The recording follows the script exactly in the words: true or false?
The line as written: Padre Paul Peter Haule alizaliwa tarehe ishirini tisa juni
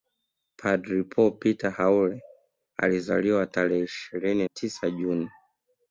true